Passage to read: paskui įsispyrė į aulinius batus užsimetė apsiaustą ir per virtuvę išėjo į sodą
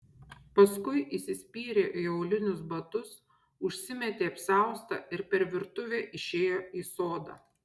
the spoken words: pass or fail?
pass